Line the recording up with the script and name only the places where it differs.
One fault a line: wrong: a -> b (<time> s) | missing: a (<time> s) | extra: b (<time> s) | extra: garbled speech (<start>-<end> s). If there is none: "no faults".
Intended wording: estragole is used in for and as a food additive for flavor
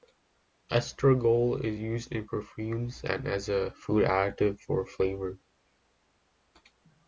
wrong: for -> perfumes (2.2 s)